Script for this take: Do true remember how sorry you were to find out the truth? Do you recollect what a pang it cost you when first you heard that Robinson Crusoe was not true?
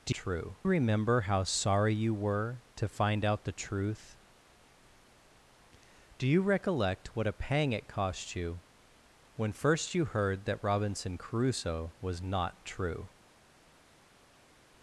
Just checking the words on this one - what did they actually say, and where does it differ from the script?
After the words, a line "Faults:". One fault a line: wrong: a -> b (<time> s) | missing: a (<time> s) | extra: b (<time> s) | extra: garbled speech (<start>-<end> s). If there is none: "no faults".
Do true remember how sorry you were to find out the truth? Do you recollect what a pang it cost you when first you heard that Robinson Crusoe was not true?
Faults:
no faults